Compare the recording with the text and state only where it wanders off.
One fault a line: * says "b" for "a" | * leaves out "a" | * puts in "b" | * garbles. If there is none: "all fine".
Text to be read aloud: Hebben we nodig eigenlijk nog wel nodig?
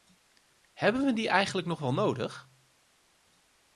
* says "die" for "nodig"